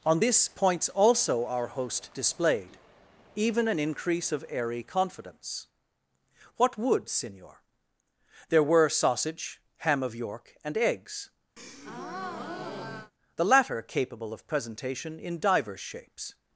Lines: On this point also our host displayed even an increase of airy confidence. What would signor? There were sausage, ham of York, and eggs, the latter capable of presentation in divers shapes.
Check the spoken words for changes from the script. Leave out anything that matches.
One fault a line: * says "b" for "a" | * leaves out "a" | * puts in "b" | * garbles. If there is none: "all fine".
* says "points" for "point"